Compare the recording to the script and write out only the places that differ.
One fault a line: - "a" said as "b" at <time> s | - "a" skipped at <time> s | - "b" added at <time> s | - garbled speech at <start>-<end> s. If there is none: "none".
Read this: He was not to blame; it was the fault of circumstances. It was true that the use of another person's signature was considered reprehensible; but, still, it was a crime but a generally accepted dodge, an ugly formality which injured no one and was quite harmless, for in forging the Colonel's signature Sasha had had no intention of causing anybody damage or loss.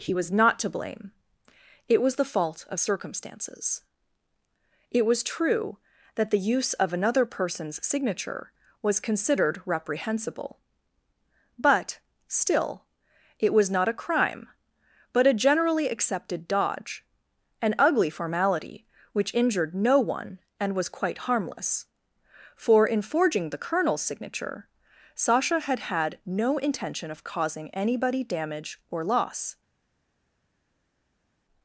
- "not" added at 13.7 s